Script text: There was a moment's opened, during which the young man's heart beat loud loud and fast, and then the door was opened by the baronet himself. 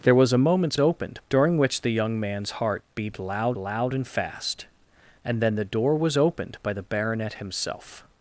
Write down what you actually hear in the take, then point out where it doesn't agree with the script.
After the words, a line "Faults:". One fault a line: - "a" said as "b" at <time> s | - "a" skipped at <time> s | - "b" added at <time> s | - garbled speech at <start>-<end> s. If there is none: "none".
There was a moment's opened, during which the young man's heart beat loud loud and fast, and then the door was opened by the baronet himself.
Faults:
none